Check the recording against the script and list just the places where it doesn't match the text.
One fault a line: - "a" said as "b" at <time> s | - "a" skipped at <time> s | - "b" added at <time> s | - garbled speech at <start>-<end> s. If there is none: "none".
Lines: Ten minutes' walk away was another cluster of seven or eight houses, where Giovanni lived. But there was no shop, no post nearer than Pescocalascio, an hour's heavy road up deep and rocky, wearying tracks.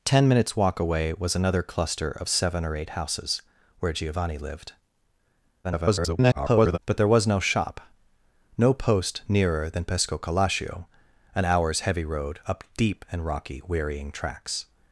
- garbled speech at 5.6-6.8 s